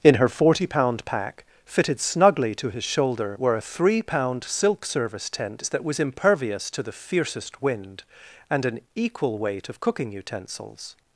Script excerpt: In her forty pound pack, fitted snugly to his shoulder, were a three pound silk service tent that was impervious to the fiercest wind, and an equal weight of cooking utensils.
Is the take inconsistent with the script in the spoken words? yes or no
no